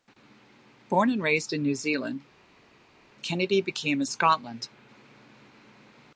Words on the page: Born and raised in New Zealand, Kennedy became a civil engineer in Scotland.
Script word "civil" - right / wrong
wrong